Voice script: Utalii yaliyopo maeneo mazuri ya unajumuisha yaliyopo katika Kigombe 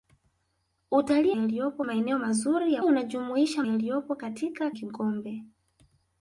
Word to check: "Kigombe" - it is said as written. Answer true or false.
true